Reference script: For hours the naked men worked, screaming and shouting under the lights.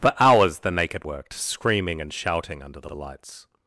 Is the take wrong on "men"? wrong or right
wrong